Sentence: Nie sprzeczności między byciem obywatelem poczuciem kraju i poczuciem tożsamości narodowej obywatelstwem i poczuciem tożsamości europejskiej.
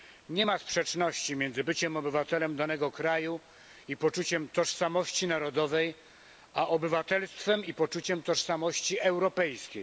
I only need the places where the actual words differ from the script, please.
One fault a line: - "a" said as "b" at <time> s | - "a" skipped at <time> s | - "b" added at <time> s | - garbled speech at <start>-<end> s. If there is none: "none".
- "ma" added at 0.4 s
- "poczuciem" said as "danego" at 2.6 s
- "a" added at 6.5 s